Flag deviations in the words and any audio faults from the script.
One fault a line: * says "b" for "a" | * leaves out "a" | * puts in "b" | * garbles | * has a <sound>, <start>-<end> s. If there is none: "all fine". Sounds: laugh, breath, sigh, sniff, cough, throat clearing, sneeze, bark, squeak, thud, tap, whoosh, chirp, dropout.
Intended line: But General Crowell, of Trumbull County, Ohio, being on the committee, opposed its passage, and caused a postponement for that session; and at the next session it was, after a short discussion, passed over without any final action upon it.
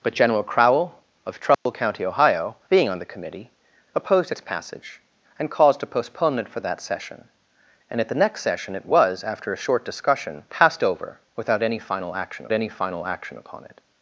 * has a dropout, 1.5-1.7 s
* puts in "any final action"